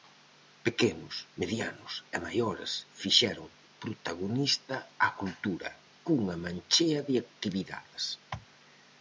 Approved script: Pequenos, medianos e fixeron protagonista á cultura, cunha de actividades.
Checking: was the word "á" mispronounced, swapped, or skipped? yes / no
no